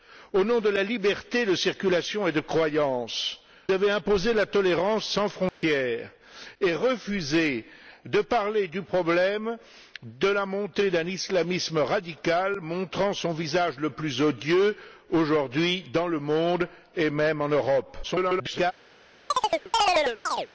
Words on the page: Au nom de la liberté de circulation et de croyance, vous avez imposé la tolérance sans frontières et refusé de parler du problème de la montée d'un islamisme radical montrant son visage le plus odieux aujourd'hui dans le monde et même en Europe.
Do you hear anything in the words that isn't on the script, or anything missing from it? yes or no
yes